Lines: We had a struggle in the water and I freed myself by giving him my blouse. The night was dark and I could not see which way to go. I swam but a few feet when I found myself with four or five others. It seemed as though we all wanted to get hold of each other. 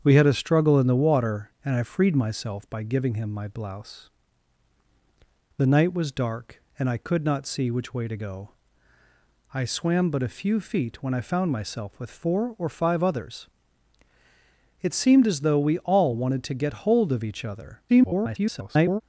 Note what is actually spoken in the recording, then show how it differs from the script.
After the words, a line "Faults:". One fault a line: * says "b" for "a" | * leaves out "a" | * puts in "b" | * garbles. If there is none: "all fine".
We had a struggle in the water and I freed myself by giving him my blouse. The night was dark and I could not see which way to go. I swam but a few feet when I found myself with four or five others. It seemed as though we all wanted to get hold of each other. [garbled]
Faults:
* garbles